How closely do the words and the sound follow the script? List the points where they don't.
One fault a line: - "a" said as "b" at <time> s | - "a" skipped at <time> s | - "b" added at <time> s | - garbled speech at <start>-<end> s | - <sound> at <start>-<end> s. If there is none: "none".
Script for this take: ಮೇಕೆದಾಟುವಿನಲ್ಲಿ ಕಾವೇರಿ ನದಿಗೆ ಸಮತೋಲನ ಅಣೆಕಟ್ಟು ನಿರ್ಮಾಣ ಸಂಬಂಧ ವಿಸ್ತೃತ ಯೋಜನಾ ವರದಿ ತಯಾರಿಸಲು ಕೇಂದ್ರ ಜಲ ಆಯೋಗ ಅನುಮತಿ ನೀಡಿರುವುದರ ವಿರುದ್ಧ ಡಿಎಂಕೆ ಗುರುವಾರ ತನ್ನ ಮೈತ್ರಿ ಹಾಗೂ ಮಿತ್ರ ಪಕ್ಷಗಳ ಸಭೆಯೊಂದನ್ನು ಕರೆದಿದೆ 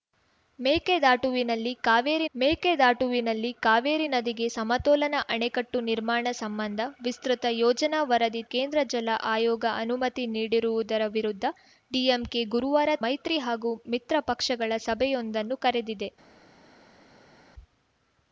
- "ಮೇಕೆದಾಟುವಿನಲ್ಲಿ ಕಾವೇರಿ" added at 2.3 s
- "ತಯಾರಿಸಲು" skipped at 8.4 s
- "ತನ್ನ" skipped at 12.9 s